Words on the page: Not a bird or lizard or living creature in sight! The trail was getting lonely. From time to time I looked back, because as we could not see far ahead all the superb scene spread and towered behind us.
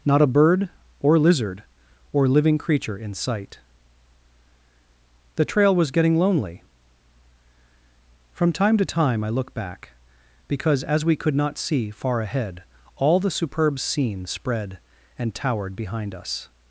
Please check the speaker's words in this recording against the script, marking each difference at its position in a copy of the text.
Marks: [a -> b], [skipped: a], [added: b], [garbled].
Not a bird or lizard or living creature in sight! The trail was getting lonely. From time to time I [looked -> look] back, because as we could not see far ahead all the superb scene spread and towered behind us.